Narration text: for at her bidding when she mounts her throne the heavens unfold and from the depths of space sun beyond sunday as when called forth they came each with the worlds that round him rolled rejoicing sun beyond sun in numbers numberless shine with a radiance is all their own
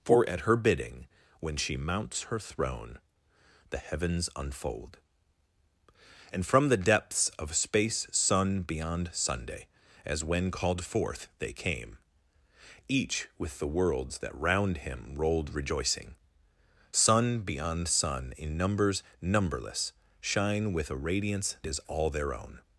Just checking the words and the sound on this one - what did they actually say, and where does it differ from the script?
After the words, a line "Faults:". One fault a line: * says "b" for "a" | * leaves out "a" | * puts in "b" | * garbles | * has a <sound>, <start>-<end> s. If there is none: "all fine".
for at her bidding when she mounts her throne the heavens unfold and from the depths of space sun beyond sunday as when called forth they came each with the worlds that round him rolled rejoicing sun beyond sun in numbers numberless shine with a radiance is all their own
Faults:
all fine